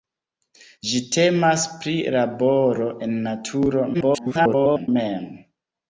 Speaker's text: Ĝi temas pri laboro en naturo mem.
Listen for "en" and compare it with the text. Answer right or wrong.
right